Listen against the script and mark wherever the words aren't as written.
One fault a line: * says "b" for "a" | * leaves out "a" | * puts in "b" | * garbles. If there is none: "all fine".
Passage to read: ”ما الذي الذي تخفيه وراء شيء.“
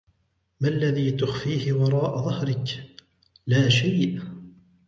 * leaves out "الذي"
* puts in "ظهرك لا"